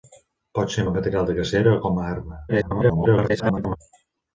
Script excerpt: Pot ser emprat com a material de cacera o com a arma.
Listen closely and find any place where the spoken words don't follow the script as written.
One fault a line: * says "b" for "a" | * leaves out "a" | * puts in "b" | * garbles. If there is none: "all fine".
* leaves out "emprat com"
* garbles